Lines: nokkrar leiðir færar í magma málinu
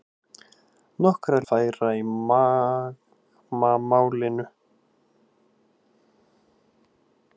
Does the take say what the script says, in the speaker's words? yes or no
no